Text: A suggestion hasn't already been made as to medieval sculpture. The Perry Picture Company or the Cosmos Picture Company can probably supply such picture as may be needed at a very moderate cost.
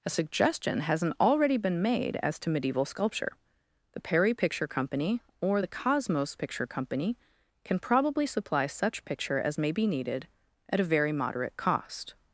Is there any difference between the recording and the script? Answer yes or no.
no